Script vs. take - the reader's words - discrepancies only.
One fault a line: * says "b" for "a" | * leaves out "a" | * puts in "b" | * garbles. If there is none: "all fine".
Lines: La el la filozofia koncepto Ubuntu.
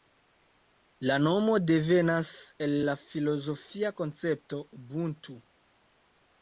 * puts in "nomo devenas"